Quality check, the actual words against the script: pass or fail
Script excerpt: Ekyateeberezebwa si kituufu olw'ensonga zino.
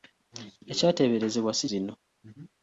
fail